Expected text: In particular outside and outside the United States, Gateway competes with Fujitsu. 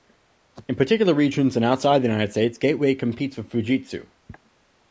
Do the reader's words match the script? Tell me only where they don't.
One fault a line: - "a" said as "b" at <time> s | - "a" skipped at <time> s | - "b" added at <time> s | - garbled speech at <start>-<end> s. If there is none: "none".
- "outside" said as "regions" at 1.1 s